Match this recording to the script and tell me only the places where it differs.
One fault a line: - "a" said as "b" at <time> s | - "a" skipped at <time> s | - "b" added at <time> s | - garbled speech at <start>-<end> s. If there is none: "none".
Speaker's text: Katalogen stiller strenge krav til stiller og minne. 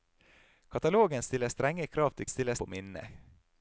none